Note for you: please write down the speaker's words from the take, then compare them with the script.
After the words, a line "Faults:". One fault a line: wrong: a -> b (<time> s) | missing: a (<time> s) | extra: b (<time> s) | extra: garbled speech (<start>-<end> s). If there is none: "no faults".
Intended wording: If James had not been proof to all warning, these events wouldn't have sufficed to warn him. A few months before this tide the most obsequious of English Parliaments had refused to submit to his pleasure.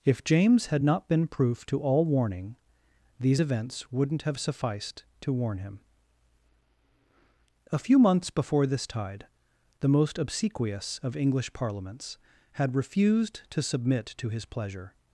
If James had not been proof to all warning, these events wouldn't have sufficed to warn him. A few months before this tide the most obsequious of English Parliaments had refused to submit to his pleasure.
Faults:
no faults